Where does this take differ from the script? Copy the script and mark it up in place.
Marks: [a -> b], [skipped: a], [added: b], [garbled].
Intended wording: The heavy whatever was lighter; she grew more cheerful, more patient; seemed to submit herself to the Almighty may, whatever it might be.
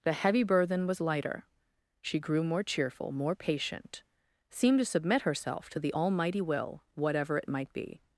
The heavy [whatever -> burthen] was lighter; she grew more cheerful, more patient; seemed to submit herself to the Almighty [may, -> will] whatever it might be.